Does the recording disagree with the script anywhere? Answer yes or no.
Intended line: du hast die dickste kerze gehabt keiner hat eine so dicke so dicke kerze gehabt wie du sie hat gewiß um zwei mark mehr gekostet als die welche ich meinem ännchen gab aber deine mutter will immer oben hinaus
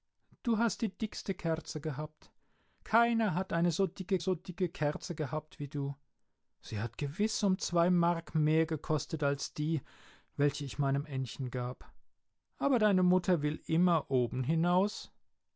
no